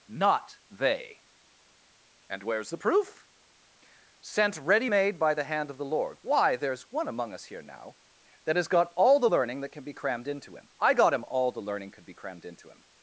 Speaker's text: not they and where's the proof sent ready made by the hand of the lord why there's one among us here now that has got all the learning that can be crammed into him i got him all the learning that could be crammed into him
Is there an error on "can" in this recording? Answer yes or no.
no